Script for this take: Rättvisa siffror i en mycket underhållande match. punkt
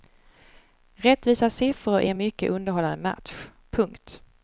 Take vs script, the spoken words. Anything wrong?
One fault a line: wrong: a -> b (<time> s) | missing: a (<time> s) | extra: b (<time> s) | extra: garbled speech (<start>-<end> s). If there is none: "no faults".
no faults